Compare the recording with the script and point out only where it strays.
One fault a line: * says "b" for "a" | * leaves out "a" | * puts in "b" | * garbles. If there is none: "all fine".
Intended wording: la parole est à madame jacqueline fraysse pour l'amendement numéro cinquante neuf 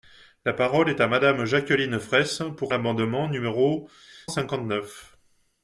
all fine